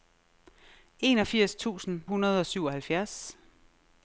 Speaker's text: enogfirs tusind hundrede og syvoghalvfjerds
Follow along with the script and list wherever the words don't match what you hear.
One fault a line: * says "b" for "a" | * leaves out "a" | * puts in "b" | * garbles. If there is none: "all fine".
all fine